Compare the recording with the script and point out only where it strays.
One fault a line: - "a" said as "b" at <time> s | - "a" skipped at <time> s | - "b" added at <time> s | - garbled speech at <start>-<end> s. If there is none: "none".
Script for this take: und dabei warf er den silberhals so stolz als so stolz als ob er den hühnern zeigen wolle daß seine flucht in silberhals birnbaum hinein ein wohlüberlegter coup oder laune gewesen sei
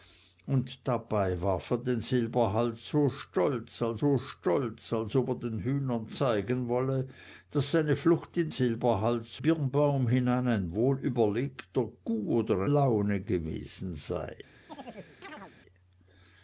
none